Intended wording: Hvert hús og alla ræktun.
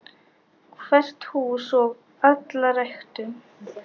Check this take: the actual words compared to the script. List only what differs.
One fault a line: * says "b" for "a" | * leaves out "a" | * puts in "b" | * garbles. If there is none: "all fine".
all fine